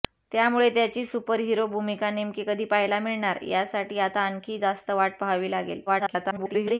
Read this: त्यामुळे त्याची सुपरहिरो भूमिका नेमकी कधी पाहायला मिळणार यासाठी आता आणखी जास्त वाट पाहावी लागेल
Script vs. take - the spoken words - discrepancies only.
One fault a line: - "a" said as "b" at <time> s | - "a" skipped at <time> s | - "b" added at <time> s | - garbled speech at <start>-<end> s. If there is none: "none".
- garbled speech at 5.9-6.8 s